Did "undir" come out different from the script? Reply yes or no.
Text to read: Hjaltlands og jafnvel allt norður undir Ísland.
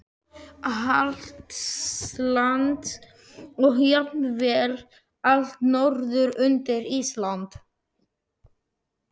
no